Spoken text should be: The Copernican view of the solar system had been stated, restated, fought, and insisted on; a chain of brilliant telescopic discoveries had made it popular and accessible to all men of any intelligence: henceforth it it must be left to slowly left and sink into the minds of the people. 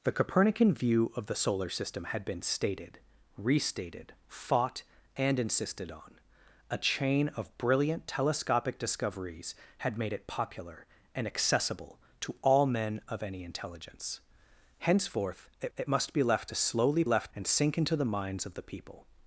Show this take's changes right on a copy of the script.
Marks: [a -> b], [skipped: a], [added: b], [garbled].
The Copernican view of the solar system had been stated, restated, fought, and insisted on; a chain of brilliant telescopic discoveries had made it popular and accessible to all men of any intelligence: henceforth it it must be left to slowly left and sink into the minds of the people.